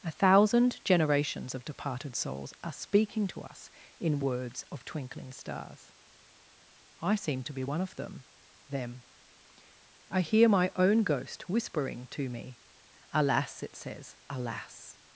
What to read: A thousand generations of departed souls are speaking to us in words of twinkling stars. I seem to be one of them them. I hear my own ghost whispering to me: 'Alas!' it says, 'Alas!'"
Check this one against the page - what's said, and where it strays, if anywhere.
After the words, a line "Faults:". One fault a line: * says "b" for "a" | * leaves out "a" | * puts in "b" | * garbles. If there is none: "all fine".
A thousand generations of departed souls are speaking to us in words of twinkling stars. I seem to be one of them them. I hear my own ghost whispering to me: 'Alas!' it says, 'Alas!'"
Faults:
all fine